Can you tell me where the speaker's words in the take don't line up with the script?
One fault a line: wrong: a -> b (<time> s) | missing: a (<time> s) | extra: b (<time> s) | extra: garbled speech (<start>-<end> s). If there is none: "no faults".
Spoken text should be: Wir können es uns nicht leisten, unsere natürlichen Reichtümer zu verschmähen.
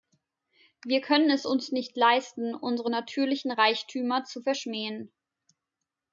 no faults